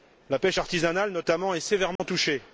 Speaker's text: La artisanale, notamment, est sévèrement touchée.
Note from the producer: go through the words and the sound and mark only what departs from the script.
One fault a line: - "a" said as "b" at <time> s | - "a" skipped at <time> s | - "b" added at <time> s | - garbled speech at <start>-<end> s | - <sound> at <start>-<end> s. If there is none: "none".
- "pêche" added at 0.4 s
- dropout at 2.0-2.0 s